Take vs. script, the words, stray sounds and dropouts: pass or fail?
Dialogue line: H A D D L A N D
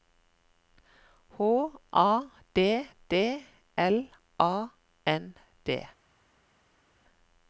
pass